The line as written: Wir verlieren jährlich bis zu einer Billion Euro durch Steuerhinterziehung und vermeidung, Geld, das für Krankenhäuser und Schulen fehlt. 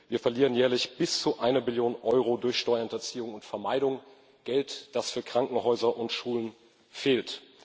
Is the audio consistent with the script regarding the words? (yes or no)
yes